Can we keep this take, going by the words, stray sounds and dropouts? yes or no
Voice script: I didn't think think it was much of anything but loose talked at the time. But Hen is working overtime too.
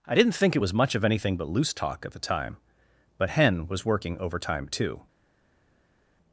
no